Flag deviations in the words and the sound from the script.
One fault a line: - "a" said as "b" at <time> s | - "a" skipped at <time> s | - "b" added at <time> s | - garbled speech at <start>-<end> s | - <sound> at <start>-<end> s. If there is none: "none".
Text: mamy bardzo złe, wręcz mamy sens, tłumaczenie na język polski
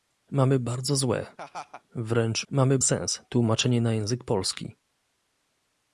- laugh at 1.4-1.8 s